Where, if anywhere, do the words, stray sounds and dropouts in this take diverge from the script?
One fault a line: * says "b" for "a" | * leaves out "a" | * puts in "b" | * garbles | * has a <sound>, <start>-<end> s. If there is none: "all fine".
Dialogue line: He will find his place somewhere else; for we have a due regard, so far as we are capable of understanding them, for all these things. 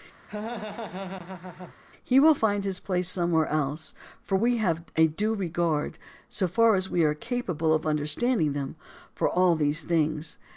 * has a laugh, 0.3-1.7 s